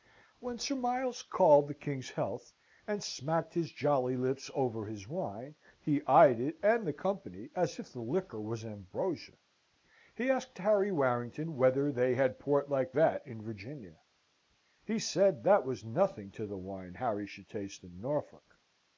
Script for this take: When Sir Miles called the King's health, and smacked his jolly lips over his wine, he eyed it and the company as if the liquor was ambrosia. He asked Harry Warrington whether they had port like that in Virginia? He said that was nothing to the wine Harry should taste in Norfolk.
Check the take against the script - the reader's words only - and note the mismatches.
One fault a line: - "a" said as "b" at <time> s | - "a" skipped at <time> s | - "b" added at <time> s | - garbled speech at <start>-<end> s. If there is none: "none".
none